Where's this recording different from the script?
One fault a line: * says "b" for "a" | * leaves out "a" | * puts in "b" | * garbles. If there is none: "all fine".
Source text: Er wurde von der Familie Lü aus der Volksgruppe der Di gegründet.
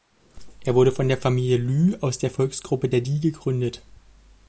all fine